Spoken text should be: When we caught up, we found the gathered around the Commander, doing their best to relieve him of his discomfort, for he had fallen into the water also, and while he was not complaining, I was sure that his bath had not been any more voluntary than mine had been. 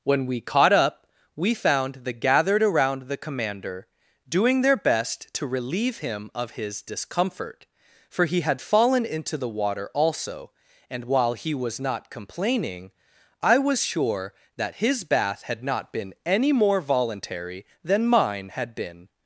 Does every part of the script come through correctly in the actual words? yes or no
yes